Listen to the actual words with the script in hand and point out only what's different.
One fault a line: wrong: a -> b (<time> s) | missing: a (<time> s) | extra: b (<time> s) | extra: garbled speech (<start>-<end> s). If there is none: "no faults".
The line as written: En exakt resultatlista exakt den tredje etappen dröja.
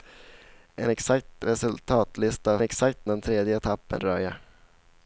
no faults